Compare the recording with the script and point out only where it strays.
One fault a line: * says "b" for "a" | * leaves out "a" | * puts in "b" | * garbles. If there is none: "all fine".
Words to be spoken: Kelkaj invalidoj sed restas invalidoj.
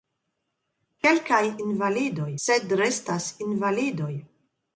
all fine